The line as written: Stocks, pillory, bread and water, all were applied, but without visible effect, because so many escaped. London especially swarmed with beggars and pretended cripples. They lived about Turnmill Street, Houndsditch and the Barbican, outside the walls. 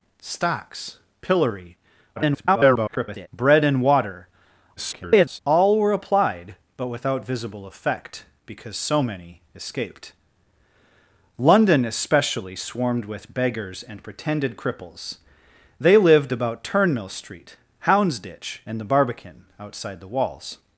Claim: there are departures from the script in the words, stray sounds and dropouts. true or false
true